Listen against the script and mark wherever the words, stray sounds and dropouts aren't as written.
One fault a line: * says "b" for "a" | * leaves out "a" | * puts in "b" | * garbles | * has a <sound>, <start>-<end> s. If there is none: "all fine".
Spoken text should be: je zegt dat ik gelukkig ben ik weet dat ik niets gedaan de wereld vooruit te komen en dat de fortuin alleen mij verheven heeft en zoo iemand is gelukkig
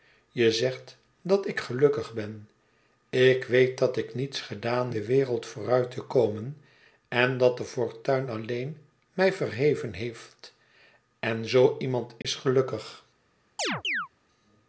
* has a dropout, 12.2-12.2 s
* has a chirp, 13.6-14.1 s